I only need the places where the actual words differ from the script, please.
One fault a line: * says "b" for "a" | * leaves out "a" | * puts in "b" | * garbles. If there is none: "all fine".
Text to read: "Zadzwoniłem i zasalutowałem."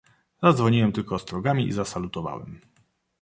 * puts in "tylko ostrogami"